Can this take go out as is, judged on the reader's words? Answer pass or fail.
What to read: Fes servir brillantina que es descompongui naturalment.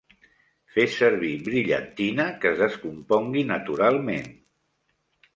pass